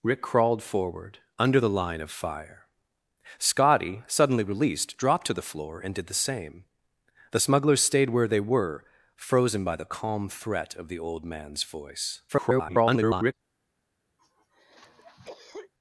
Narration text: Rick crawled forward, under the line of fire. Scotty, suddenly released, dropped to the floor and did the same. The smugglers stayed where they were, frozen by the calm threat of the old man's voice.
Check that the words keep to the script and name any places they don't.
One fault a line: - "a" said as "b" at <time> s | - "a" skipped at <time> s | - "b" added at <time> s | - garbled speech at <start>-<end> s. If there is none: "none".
- garbled speech at 12.3-13.3 s